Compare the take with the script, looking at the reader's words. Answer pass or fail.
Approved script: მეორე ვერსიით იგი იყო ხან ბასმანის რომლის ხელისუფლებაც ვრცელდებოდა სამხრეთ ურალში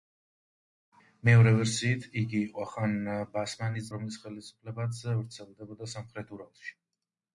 pass